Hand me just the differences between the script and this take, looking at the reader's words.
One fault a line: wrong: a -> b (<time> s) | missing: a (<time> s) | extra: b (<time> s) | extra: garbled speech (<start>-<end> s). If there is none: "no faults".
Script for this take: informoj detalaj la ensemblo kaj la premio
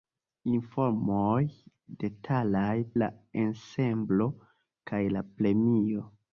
no faults